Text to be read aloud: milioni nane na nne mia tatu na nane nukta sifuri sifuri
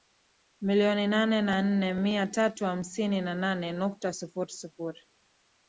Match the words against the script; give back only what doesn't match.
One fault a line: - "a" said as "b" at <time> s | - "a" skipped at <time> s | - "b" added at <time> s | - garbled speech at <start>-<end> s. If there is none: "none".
- "hamsini" added at 2.6 s